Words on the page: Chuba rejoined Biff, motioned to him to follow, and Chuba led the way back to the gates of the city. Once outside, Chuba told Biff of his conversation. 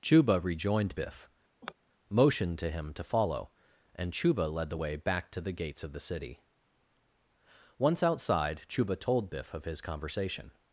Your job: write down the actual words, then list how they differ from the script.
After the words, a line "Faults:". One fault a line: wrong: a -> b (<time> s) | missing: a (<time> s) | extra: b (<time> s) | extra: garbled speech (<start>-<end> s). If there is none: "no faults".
Chuba rejoined Biff, motioned to him to follow, and Chuba led the way back to the gates of the city. Once outside, Chuba told Biff of his conversation.
Faults:
no faults